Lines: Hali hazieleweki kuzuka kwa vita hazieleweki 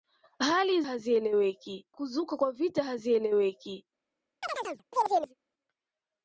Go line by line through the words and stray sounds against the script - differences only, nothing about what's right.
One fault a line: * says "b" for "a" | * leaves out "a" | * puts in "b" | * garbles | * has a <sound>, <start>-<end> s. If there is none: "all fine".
* has a chirp, 4.4-5.3 s